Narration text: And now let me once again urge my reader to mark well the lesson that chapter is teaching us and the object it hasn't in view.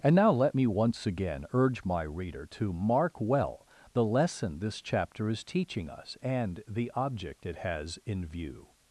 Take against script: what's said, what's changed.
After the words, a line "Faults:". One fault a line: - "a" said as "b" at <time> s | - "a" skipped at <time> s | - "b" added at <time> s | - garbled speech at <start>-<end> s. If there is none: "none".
And now let me once again urge my reader to mark well the lesson this chapter is teaching us and the object it has in view.
Faults:
- "that" said as "this" at 4.6 s
- "hasn't" said as "has" at 7.6 s